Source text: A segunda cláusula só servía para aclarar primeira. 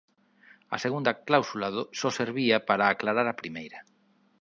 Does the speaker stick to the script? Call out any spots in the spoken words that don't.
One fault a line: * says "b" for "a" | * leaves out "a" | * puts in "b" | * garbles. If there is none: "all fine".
* puts in "a"